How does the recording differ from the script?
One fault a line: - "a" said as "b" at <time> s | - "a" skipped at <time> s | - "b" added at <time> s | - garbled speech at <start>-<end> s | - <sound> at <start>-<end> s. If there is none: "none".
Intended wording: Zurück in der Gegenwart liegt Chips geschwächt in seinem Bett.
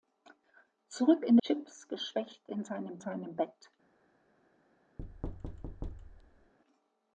- "der Gegenwart liegt" skipped at 1.4 s
- "seinem" added at 3.0 s
- thud at 5.0-6.5 s